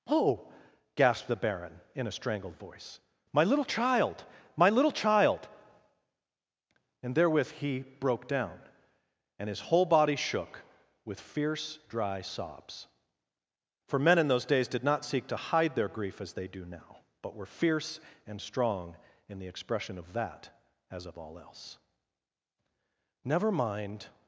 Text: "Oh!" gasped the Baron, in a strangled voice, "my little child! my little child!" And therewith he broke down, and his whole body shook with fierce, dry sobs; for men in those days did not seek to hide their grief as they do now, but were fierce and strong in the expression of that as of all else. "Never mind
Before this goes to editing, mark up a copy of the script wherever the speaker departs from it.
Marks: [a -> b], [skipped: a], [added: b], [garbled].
"Oh!" gasped the Baron, in a strangled voice, "my little child! my little child!" And therewith he broke down, and his whole body shook with fierce, dry sobs; for men in those days did not seek to hide their grief as they do now, but were fierce and strong in the expression of that as of all else. "Never mind